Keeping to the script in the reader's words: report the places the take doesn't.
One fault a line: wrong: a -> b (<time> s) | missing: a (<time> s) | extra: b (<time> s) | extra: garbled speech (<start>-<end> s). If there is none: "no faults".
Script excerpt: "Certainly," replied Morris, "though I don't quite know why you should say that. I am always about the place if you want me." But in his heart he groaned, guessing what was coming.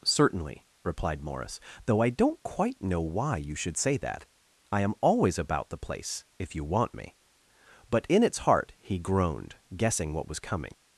wrong: his -> its (8.2 s)